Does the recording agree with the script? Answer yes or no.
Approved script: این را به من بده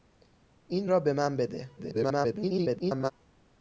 no